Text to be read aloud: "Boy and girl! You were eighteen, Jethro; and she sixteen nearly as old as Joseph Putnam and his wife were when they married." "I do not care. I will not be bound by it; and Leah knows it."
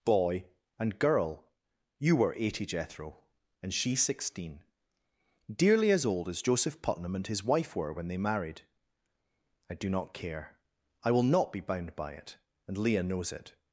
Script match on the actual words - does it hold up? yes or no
no